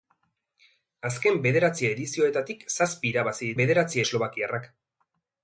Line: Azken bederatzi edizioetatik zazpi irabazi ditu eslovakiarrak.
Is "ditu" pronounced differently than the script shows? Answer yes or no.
yes